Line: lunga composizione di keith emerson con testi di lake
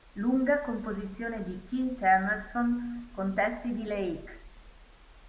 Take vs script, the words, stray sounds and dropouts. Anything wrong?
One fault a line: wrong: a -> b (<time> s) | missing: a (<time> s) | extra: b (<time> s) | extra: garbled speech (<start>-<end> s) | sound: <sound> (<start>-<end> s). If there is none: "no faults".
no faults